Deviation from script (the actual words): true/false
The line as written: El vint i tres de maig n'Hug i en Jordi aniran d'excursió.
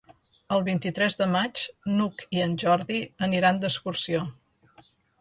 false